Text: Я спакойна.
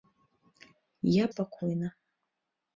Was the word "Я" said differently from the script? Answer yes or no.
no